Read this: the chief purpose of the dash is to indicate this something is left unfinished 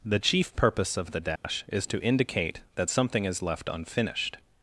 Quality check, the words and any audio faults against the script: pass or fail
fail